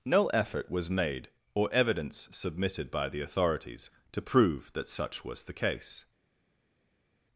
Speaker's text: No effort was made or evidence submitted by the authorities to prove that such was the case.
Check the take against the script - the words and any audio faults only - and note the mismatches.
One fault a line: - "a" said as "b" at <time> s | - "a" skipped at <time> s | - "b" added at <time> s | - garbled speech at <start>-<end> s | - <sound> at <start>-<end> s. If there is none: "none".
none